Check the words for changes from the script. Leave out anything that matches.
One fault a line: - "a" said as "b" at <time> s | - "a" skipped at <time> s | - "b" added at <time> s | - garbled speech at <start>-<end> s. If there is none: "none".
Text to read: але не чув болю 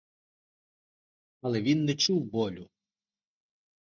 - "він" added at 1.6 s